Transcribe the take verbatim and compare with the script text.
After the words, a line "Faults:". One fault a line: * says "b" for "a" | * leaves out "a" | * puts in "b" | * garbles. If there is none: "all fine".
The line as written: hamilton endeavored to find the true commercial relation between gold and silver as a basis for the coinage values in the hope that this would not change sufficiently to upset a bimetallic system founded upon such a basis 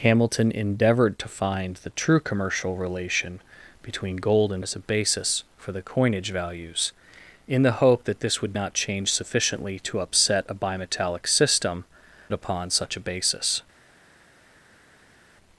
hamilton endeavored to find the true commercial relation between gold and as a basis for the coinage values in the hope that this would not change sufficiently to upset a bimetallic system upon such a basis
Faults:
* leaves out "silver"
* leaves out "founded"